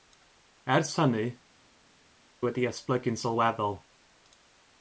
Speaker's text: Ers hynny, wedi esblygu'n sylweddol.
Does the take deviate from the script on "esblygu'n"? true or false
false